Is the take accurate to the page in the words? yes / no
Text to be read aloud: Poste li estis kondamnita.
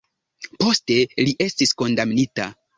yes